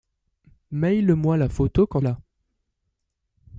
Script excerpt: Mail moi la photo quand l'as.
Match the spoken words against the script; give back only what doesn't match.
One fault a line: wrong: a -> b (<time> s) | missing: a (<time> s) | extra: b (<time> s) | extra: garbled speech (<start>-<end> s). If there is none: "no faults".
no faults